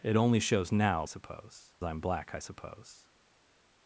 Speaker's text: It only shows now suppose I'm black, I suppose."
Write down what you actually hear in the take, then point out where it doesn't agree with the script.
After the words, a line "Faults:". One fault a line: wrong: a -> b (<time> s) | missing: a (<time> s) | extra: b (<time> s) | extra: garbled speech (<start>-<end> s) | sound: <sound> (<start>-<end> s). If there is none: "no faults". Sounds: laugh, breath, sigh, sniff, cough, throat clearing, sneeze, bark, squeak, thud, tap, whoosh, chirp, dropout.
It only shows now suppose I'm black, I suppose."
Faults:
no faults